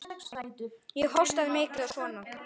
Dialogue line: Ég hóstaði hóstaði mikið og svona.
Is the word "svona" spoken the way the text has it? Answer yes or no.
yes